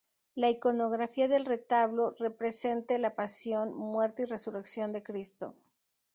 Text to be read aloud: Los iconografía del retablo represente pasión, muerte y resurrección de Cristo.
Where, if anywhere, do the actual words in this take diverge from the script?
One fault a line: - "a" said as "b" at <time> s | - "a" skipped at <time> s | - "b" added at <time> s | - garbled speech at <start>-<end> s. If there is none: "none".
- "Los" said as "La" at 0.3 s
- "la" added at 3.0 s